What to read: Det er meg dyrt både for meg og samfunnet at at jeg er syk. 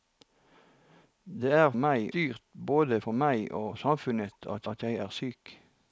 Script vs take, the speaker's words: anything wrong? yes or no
no